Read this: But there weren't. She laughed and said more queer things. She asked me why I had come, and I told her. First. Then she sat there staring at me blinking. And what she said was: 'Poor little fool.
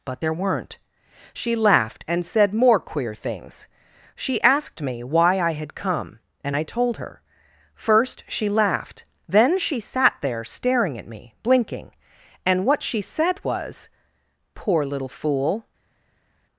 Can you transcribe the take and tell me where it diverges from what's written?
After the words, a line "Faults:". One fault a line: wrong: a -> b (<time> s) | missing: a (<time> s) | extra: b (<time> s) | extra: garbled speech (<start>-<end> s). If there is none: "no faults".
But there weren't. She laughed and said more queer things. She asked me why I had come, and I told her. First she laughed. Then she sat there staring at me blinking. And what she said was: 'Poor little fool.
Faults:
extra: she laughed (8.3 s)